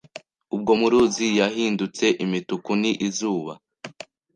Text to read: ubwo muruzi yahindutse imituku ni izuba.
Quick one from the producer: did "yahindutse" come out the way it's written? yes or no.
yes